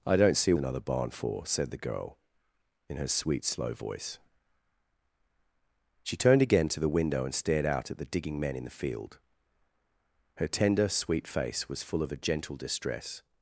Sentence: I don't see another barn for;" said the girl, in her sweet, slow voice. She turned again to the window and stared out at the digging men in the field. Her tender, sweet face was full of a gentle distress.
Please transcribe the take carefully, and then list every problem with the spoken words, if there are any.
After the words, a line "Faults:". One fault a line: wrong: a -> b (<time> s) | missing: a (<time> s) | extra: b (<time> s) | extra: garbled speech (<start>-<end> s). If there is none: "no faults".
I don't see another barn for;" said the girl, in her sweet, slow voice. She turned again to the window and stared out at the digging men in the field. Her tender, sweet face was full of a gentle distress.
Faults:
no faults